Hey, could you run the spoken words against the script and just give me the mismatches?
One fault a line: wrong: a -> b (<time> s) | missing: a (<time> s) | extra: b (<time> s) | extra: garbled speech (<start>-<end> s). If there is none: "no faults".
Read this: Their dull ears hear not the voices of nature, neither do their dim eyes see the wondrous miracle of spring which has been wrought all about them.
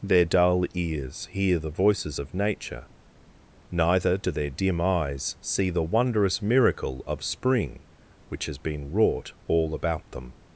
missing: not (1.6 s)